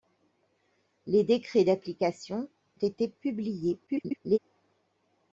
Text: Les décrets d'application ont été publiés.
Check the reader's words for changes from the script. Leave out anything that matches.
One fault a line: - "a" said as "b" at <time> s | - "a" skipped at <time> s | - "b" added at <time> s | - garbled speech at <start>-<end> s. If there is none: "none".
- "ont" skipped at 2.5 s
- garbled speech at 3.9-4.4 s